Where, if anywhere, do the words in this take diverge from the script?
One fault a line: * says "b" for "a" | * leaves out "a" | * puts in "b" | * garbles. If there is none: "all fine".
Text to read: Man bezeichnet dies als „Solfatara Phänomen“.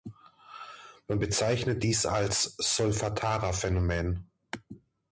all fine